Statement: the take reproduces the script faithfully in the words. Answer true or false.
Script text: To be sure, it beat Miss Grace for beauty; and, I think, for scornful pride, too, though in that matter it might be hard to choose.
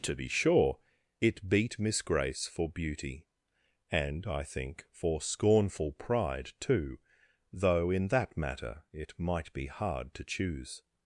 true